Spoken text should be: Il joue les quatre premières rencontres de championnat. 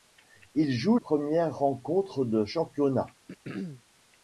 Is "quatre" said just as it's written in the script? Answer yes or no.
no